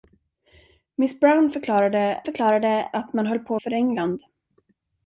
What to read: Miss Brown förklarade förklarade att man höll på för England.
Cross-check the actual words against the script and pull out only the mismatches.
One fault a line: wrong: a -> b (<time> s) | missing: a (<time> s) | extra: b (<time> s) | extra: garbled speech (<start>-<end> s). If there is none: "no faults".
no faults